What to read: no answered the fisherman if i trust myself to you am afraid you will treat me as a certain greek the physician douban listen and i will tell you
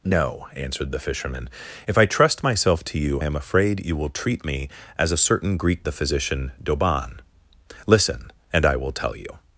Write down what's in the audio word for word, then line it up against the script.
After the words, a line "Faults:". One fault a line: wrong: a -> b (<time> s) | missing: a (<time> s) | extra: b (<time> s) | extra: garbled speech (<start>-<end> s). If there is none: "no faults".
no answered the fisherman if i trust myself to you am afraid you will treat me as a certain greek the physician douban listen and i will tell you
Faults:
no faults